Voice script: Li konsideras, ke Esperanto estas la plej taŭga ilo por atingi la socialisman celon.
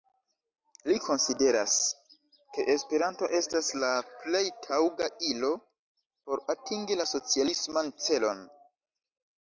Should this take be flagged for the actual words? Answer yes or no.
no